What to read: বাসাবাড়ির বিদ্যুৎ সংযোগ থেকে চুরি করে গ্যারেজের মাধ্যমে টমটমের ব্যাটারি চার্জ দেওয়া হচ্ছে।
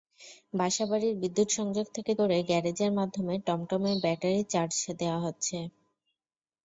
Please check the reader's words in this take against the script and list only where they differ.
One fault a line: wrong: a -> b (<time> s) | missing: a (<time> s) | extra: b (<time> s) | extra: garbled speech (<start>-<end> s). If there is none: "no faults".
missing: চুরি (2.1 s)